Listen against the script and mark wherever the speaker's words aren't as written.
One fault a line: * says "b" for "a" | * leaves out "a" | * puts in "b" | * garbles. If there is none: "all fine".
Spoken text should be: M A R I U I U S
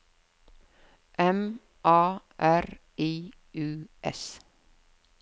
* leaves out "I U"